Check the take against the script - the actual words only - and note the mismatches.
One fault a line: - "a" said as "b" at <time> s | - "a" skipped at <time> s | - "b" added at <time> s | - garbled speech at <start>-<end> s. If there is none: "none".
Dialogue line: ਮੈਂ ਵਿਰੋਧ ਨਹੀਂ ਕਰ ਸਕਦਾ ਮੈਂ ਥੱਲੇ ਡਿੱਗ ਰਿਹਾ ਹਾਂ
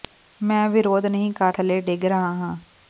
- "ਸਕਦਾ ਮੈਂ" skipped at 1.5 s